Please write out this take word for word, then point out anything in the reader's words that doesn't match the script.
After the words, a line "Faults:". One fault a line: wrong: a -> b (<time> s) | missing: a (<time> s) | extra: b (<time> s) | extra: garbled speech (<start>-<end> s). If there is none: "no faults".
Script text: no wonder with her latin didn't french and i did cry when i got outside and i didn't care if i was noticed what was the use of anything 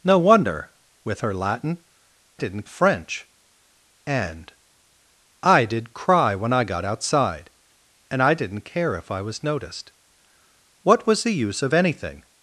no wonder with her latin didn't french and i did cry when i got outside and i didn't care if i was noticed what was the use of anything
Faults:
no faults